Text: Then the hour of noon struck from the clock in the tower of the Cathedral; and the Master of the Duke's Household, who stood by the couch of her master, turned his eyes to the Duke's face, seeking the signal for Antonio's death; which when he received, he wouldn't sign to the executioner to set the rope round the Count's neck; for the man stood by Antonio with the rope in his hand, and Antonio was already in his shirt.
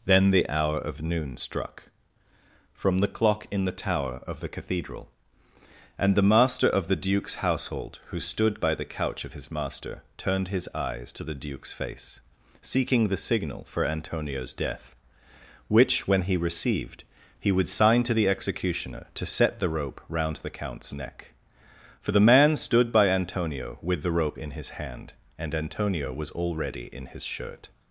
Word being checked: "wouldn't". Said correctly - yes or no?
no